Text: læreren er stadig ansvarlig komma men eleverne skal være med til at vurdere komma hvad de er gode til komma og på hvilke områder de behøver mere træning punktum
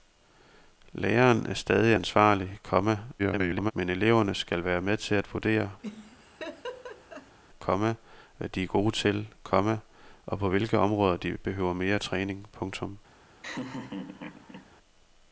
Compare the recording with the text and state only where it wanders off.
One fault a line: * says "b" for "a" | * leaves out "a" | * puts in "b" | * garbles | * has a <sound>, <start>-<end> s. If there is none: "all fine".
* garbles
* has a laugh, 5.8-7.4 s
* has a laugh, 13.4-14.7 s